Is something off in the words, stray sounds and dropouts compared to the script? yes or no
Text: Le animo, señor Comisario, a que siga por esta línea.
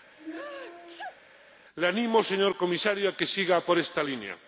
yes